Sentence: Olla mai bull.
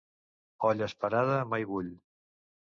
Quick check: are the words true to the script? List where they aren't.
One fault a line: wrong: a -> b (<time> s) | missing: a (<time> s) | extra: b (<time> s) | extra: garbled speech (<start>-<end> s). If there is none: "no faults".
extra: esperada (0.9 s)